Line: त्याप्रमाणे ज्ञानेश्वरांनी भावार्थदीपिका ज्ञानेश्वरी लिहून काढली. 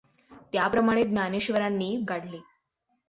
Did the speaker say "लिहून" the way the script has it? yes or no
no